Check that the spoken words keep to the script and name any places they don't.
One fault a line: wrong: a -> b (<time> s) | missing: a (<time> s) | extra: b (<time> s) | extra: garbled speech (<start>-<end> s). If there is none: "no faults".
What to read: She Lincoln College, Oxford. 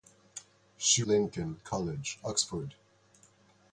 no faults